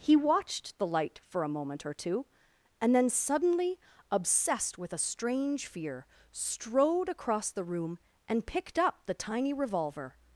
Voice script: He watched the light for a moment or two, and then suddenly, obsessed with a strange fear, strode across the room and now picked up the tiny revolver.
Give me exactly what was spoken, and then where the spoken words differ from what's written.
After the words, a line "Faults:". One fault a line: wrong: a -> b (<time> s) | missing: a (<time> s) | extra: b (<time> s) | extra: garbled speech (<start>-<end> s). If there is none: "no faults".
He watched the light for a moment or two, and then suddenly, obsessed with a strange fear, strode across the room and picked up the tiny revolver.
Faults:
missing: now (8.5 s)